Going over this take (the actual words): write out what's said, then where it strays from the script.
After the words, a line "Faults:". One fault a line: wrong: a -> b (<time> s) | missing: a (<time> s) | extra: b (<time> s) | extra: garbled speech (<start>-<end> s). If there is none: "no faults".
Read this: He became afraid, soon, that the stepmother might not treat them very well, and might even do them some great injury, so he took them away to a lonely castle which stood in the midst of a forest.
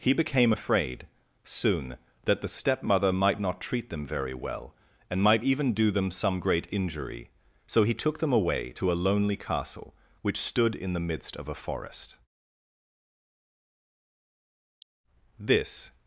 He became afraid, soon, that the stepmother might not treat them very well, and might even do them some great injury, so he took them away to a lonely castle which stood in the midst of a forest. This
Faults:
extra: This (15.4 s)